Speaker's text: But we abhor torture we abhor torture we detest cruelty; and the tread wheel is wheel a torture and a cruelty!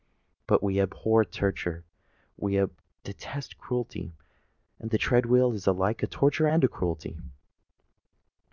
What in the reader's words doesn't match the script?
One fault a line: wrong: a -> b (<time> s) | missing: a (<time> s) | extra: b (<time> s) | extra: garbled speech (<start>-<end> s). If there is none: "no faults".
missing: abhor torture we (2.6 s)
wrong: wheel -> alike (5.7 s)